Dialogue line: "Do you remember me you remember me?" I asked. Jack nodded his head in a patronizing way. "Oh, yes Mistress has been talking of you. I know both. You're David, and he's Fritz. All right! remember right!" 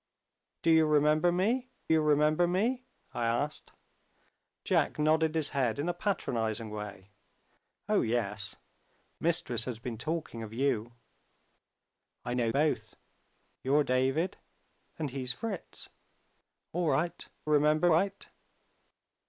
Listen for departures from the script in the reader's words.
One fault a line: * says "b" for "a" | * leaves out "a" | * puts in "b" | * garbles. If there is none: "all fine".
all fine